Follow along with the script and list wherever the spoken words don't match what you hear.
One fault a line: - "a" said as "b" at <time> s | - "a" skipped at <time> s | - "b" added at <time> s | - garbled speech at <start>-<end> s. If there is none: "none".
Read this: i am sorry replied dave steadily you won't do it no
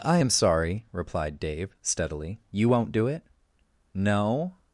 none